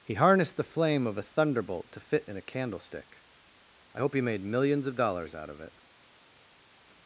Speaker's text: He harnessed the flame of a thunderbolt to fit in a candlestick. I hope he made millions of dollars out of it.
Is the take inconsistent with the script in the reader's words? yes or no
no